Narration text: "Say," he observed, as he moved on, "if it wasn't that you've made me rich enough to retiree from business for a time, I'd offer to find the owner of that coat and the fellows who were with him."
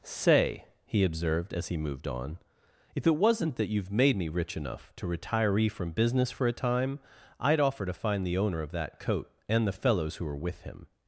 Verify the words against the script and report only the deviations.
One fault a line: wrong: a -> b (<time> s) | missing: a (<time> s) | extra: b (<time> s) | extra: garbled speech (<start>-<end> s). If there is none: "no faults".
no faults